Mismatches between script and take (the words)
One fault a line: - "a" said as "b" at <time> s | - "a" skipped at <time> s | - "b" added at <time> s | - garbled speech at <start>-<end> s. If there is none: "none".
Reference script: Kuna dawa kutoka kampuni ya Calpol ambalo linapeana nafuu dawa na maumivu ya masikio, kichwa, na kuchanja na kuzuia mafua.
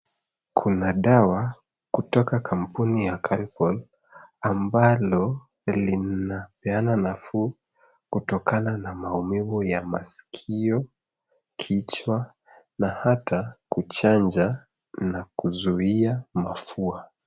- "dawa" said as "kutokana" at 8.1 s
- "hata" added at 12.9 s